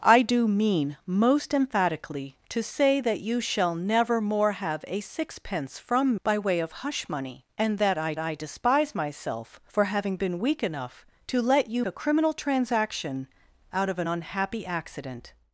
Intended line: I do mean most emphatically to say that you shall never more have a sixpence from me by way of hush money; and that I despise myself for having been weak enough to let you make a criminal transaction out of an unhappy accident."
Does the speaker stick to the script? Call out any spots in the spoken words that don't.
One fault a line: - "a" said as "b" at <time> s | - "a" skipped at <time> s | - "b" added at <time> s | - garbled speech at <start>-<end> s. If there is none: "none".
- "me" skipped at 6.2 s
- "I" added at 8.2 s
- "make" skipped at 11.8 s